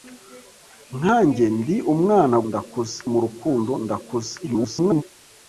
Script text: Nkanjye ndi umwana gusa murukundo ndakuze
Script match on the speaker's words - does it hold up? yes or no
no